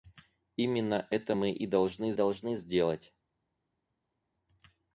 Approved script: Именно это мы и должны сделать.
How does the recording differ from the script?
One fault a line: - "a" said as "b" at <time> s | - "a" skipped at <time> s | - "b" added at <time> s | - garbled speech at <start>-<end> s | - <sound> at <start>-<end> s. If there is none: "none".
- "должны" added at 2.1 s